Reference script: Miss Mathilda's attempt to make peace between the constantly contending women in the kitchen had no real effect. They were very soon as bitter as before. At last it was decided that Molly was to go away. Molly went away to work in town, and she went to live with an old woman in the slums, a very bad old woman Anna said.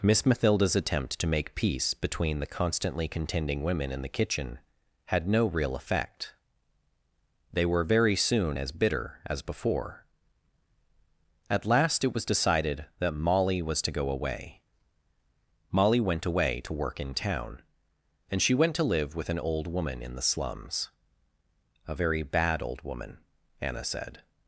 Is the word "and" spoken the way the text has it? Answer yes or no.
yes